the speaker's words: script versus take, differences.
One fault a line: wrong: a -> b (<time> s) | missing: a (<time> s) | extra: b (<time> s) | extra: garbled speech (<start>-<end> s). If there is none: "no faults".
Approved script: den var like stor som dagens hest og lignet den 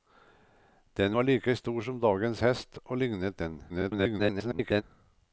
extra: garbled speech (3.7-4.8 s)